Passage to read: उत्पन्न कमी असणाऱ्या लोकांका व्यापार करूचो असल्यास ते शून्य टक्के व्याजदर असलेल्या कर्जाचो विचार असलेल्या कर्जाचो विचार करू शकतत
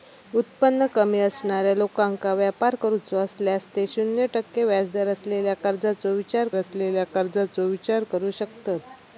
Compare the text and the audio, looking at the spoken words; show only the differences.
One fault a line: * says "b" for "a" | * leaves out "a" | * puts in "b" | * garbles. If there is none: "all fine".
all fine